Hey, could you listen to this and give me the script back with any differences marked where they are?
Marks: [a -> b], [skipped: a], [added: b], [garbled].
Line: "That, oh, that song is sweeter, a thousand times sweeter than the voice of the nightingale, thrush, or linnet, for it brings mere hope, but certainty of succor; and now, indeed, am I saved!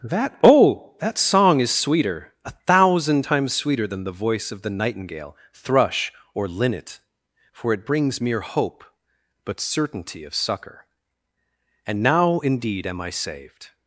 "That, oh, that song is sweeter, a thousand times sweeter than the voice of the nightingale, thrush, or linnet, for it brings mere hope, but certainty of succor; and now, indeed, am I saved!